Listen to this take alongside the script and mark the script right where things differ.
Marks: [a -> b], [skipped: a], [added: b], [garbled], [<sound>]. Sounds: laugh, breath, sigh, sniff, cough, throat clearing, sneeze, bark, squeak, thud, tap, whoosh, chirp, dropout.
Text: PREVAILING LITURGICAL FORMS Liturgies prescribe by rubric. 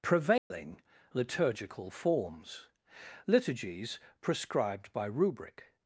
PREVAILING [dropout] LITURGICAL FORMS Liturgies [prescribe -> prescribed] by rubric.